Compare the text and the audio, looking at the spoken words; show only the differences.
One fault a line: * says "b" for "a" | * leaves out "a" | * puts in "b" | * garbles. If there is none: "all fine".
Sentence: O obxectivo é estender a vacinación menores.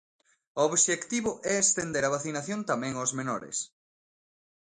* puts in "tamén aos"